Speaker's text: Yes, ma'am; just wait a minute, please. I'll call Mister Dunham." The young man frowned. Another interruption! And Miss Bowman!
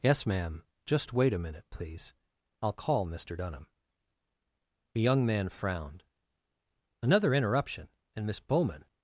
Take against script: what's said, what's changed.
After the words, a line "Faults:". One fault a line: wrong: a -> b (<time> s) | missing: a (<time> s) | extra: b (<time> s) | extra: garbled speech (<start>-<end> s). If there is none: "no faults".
Yes, ma'am; just wait a minute, please. I'll call Mister Dunham." The young man frowned. Another interruption! And Miss Bowman!
Faults:
no faults